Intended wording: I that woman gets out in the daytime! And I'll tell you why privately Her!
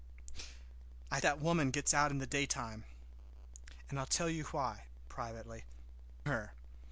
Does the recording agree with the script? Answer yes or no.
yes